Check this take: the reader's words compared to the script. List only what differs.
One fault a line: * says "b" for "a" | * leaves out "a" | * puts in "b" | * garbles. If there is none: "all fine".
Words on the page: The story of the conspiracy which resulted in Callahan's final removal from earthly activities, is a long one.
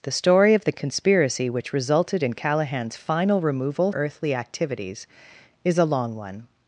* leaves out "from"